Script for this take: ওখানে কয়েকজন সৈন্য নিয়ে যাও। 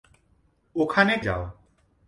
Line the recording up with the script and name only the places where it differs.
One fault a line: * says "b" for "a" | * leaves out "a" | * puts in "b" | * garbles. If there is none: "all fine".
* leaves out "কয়েকজন সৈন্য নিয়ে"